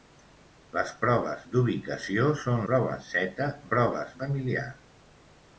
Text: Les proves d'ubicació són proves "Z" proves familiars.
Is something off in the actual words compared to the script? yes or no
no